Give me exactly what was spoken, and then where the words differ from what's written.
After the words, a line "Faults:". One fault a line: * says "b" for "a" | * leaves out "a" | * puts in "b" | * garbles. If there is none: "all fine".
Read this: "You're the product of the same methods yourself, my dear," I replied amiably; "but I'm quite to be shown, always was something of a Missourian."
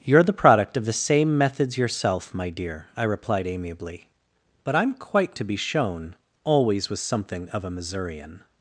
"You're the product of the same methods yourself, my dear," I replied amiably; "but I'm quite to be shown, always was something of a Missourian."
Faults:
all fine